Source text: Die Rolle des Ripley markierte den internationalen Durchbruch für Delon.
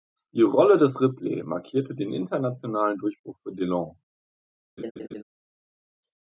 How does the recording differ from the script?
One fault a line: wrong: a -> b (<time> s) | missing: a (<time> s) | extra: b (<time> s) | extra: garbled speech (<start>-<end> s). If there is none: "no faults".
no faults